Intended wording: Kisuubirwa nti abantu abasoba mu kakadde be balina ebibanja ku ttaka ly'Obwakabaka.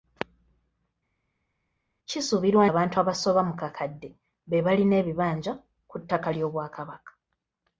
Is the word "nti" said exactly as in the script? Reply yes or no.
no